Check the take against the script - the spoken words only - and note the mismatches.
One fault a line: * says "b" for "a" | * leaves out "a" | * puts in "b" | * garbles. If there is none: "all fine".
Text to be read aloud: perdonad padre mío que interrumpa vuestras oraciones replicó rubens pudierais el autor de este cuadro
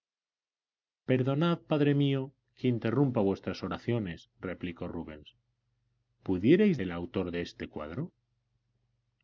all fine